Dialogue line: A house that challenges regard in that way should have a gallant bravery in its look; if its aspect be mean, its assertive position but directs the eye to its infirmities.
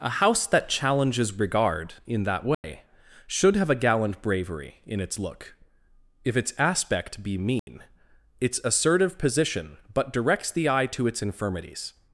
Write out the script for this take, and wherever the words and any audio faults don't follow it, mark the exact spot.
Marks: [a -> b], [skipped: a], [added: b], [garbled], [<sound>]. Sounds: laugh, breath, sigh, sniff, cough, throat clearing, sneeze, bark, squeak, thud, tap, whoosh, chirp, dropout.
A house that challenges regard in that way [dropout] should have a gallant bravery in its look; if its aspect be mean, [dropout] its assertive position but directs the eye to its infirmities.